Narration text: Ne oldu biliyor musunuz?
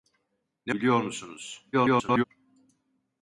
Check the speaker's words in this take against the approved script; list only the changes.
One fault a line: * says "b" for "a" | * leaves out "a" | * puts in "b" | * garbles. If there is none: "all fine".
* leaves out "oldu"
* garbles